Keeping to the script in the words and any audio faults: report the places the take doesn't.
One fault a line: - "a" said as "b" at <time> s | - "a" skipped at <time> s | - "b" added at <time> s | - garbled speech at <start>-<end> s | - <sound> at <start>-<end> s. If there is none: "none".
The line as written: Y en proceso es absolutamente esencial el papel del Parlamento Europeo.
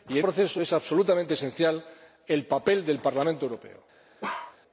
- bark at 4.2-4.6 s